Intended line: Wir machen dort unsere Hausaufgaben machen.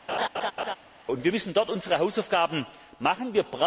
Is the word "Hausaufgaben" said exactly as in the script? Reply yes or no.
yes